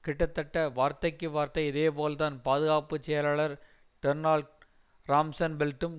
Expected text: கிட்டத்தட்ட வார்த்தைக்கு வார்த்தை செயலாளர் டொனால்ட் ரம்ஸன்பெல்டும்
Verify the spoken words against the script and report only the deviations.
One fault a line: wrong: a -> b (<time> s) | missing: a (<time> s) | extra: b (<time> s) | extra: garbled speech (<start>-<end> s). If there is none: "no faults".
extra: இதேபோல்தான் பாதுகாப்பு (1.7 s)